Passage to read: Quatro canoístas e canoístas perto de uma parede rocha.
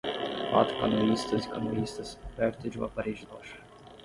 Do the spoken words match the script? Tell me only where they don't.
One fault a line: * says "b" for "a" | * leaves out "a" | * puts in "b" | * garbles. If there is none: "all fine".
all fine